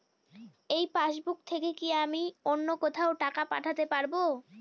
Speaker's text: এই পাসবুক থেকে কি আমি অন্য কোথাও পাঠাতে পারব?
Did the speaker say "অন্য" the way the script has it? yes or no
yes